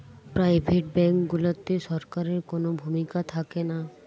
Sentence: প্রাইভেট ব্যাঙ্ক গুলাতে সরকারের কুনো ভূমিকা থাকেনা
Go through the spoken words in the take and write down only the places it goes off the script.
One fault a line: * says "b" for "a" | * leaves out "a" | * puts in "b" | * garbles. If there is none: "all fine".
all fine